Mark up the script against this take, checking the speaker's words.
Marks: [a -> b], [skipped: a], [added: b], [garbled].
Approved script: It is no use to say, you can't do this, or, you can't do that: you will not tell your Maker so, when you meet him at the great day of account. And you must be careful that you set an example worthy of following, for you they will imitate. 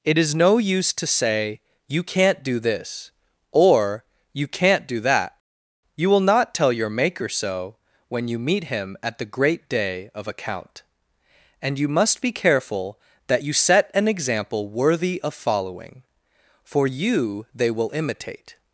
It is no use to say, you can't do this, or, you can't do that: you will not tell your Maker so, when you meet him at the great day of account. And you must be careful that you set an example worthy of following, for you they will imitate.